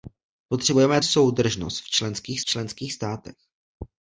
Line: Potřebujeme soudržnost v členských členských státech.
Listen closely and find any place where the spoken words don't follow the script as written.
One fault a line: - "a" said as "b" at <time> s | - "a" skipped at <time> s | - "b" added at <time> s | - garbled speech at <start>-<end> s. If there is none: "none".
none